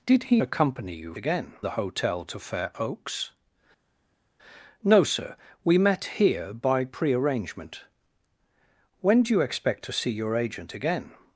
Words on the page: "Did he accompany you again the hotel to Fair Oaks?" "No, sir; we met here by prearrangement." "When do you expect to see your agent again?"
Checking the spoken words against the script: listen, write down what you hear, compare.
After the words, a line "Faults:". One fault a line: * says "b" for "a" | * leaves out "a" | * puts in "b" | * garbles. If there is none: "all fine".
"Did he accompany you again the hotel to Fair Oaks?" "No, sir; we met here by prearrangement." "When do you expect to see your agent again?"
Faults:
all fine